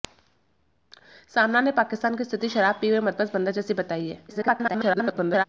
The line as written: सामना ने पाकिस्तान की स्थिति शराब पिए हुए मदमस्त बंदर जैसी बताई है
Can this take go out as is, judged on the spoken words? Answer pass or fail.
fail